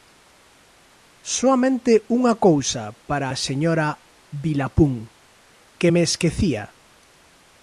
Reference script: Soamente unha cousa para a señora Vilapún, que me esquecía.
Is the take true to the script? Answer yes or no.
yes